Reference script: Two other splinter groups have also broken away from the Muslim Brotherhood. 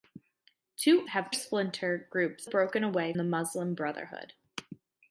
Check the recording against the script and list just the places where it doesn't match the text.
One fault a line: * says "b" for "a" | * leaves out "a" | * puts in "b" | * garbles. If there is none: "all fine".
* says "have" for "other"
* leaves out "have also"
* leaves out "from"